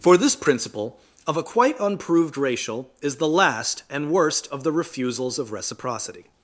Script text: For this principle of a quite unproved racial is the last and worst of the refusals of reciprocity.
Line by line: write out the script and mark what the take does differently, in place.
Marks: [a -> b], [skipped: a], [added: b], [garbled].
For this principle of a quite unproved racial is the last and worst of the refusals of reciprocity.